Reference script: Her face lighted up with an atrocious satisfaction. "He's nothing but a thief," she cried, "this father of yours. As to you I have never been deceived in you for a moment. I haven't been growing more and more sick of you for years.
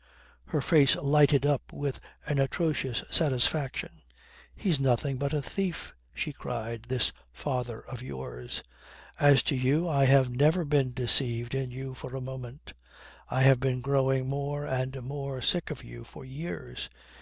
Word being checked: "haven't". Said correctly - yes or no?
no